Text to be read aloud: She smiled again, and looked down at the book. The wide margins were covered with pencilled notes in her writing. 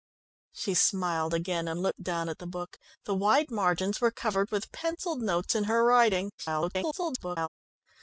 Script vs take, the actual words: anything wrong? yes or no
yes